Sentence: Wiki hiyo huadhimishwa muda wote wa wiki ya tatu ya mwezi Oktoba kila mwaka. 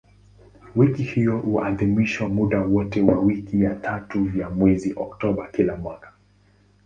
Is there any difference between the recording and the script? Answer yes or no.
no